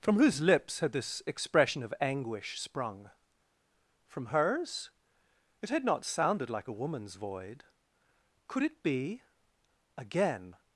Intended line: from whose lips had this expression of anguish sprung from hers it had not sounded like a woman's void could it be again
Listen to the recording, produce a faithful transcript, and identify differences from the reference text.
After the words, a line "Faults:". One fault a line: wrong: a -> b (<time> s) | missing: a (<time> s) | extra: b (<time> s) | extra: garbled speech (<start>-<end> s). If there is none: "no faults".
from whose lips had this expression of anguish sprung from hers it had not sounded like a woman's void could it be again
Faults:
no faults